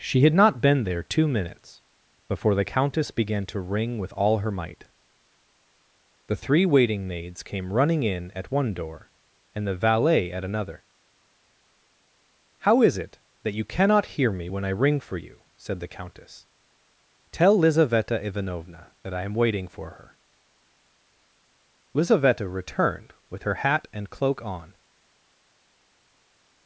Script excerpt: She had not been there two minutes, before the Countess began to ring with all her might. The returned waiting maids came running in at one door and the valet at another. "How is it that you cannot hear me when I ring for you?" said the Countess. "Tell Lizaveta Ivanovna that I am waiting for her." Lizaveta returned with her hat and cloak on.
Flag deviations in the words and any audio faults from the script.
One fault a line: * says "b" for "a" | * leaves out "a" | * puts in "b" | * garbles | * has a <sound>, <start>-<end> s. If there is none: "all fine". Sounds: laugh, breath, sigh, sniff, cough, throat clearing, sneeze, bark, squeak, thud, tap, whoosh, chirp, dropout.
* says "three" for "returned"